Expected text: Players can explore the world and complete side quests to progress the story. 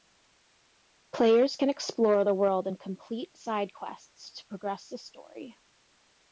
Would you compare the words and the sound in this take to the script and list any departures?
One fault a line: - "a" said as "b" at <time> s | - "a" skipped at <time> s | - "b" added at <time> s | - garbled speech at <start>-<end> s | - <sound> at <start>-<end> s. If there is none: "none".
none